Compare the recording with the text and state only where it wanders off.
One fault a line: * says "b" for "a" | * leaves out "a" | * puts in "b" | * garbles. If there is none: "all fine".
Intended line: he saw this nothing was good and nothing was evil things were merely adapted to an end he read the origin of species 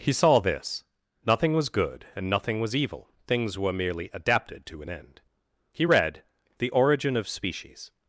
all fine